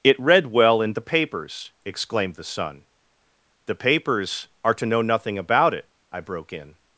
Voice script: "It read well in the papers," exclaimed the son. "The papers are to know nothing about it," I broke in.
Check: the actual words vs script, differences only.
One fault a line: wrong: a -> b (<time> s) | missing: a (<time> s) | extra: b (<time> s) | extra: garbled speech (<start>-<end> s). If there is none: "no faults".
no faults